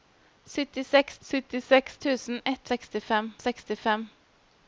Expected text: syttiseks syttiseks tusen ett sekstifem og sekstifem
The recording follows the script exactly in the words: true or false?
true